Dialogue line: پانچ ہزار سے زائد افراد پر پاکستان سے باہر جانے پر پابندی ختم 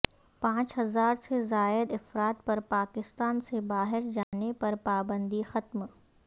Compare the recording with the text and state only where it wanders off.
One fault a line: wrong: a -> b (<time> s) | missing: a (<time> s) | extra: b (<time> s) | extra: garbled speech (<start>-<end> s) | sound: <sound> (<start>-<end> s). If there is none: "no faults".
sound: dropout (4.2-4.3 s)